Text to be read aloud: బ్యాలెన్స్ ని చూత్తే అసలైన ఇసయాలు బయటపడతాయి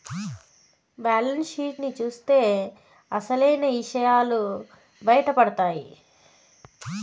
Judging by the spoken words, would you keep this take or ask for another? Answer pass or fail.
fail